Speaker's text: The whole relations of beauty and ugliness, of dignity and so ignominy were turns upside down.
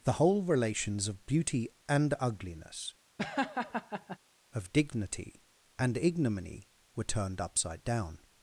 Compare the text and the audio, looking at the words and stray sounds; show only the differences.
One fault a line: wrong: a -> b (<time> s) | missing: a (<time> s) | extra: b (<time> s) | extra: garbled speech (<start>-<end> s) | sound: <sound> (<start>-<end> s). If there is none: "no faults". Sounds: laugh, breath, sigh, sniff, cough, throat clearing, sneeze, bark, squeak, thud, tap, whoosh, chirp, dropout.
sound: laugh (3.2-4.2 s)
missing: so (6.0 s)
wrong: turns -> turned (7.0 s)